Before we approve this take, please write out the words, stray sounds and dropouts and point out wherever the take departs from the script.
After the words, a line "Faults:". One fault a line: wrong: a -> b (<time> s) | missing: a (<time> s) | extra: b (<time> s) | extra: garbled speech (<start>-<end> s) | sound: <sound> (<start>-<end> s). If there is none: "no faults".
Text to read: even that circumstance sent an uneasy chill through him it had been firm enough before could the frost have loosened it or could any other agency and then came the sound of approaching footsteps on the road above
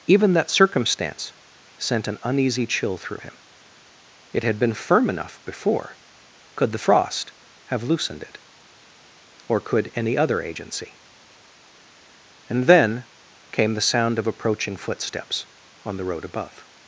even that circumstance sent an uneasy chill through him it had been firm enough before could the frost have loosened it or could any other agency and then came the sound of approaching footsteps on the road above
Faults:
no faults